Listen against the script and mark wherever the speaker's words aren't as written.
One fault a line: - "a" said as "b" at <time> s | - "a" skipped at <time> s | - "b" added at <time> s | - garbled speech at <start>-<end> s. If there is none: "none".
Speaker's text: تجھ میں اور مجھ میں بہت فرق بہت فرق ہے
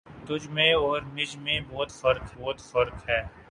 none